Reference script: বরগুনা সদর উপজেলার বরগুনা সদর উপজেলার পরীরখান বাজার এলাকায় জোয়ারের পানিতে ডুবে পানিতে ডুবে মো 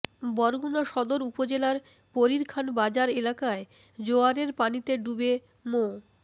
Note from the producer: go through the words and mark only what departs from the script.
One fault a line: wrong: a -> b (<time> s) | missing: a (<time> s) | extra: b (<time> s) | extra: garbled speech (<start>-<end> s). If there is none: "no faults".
missing: বরগুনা সদর উপজেলার (1.8 s)
missing: পানিতে ডুবে (5.3 s)